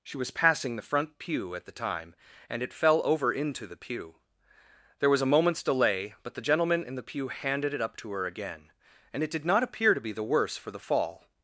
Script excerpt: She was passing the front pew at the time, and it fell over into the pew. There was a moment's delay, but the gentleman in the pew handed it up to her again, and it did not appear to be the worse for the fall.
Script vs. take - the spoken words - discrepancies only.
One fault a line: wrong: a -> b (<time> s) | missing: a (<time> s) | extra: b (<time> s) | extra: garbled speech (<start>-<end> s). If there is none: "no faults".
no faults